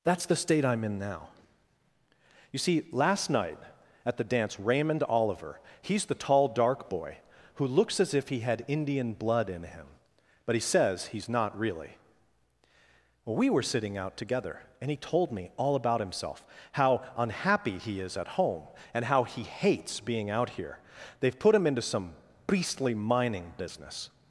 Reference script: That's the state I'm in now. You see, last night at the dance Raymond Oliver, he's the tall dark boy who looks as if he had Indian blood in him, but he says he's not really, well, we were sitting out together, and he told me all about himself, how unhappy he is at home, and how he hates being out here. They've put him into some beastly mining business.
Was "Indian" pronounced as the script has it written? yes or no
yes